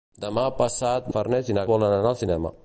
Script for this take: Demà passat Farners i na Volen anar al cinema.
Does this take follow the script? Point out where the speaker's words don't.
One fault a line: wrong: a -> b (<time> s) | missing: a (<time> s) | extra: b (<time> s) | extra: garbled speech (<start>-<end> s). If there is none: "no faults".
no faults